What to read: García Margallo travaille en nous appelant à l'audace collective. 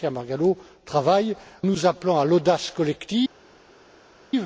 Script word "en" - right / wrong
wrong